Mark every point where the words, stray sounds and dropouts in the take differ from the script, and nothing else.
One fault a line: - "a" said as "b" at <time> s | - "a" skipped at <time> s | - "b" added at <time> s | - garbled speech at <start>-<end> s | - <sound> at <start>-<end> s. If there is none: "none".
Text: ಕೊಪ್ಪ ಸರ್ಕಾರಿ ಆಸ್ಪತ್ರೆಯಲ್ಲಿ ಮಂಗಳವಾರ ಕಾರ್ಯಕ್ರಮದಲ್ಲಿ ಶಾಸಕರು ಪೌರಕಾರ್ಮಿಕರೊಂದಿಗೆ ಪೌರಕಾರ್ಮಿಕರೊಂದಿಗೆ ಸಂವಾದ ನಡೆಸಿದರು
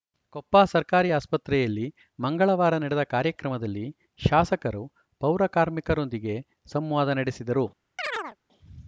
- "ನಡೆದ" added at 2.8 s
- "ಪೌರಕಾರ್ಮಿಕರೊಂದಿಗೆ" skipped at 6.4 s
- chirp at 8.0-8.4 s